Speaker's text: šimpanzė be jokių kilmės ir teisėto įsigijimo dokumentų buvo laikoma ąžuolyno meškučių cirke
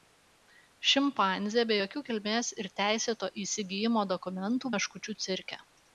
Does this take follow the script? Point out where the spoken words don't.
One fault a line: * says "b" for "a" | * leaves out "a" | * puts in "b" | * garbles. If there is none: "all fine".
* leaves out "buvo laikoma ąžuolyno"